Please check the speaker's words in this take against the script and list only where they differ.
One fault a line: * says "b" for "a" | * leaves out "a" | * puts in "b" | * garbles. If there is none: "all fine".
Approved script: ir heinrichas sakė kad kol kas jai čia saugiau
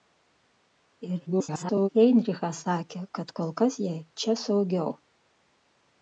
* garbles